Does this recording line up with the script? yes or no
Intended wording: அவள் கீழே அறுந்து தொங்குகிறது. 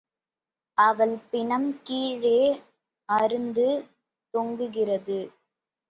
no